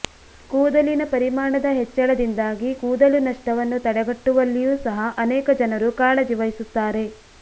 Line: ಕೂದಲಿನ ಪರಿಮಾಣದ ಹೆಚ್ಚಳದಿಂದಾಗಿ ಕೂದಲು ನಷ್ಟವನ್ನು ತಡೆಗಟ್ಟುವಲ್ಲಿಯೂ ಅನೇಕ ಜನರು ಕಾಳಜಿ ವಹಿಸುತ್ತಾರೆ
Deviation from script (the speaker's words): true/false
true